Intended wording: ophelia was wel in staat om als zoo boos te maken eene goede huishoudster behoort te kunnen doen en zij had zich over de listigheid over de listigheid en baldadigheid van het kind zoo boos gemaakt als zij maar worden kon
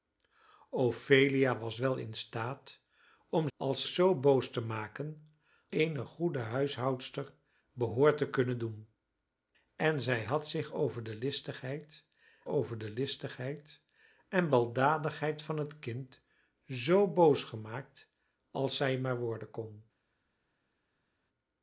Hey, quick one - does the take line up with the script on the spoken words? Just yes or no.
yes